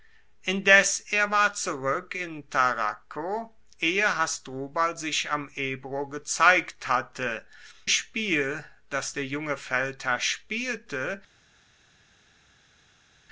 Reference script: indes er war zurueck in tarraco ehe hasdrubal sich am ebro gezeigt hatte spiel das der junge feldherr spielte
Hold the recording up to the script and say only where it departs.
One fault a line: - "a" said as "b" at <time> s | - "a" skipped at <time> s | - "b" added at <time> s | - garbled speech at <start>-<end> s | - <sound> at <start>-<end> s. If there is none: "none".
none